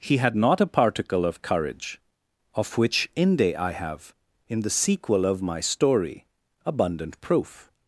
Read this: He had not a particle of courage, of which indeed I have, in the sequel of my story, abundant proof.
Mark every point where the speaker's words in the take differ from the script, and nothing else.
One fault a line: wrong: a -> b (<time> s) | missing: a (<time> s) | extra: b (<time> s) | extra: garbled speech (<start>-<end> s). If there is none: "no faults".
wrong: indeed -> inde (3.2 s)